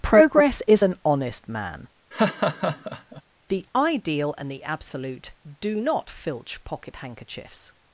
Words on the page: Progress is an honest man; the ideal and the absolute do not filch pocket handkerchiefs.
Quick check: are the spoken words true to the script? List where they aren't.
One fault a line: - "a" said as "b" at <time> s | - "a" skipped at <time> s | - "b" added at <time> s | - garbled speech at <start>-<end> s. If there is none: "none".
none